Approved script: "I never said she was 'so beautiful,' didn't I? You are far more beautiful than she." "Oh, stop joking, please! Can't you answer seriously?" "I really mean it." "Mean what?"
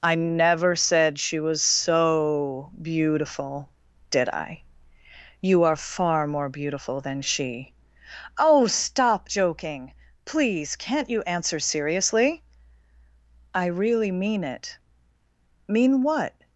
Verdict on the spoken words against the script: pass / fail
fail